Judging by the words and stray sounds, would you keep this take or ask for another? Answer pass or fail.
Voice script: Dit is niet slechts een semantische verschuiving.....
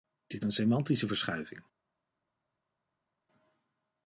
fail